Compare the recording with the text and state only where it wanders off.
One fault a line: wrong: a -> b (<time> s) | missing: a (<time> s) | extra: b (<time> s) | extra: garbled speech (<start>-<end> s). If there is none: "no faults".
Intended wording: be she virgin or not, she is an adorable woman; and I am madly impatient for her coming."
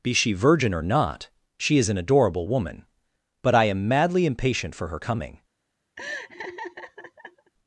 wrong: and -> but (3.4 s)